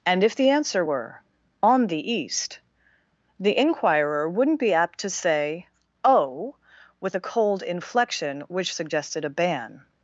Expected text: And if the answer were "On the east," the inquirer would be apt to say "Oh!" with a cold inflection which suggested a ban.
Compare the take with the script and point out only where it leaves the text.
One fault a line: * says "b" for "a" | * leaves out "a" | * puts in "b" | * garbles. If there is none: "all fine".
* says "wouldn't" for "would"